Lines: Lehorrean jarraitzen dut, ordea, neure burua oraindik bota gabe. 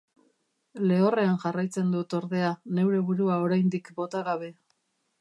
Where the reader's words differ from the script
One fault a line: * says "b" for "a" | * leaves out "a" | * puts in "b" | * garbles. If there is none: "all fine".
all fine